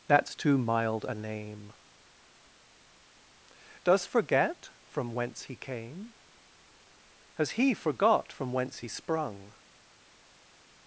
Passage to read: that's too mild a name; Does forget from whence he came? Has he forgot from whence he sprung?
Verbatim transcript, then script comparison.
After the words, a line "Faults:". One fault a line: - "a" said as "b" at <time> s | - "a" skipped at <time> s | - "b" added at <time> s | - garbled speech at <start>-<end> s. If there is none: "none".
that's too mild a name; Does forget from whence he came? Has he forgot from whence he sprung?
Faults:
none